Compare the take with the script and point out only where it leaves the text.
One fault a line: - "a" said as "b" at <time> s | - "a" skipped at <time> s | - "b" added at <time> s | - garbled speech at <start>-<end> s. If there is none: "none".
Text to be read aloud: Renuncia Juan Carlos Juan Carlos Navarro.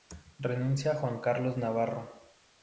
- "Juan Carlos" skipped at 1.6 s